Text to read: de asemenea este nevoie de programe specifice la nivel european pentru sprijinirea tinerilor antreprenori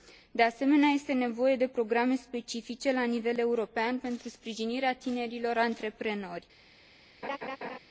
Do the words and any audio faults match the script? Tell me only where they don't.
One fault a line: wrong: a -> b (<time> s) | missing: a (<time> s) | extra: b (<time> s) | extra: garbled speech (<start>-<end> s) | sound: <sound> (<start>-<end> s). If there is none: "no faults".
sound: laugh (7.2-7.8 s)